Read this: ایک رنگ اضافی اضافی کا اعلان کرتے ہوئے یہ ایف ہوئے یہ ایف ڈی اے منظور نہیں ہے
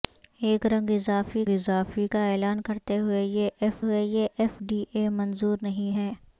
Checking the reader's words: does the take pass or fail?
pass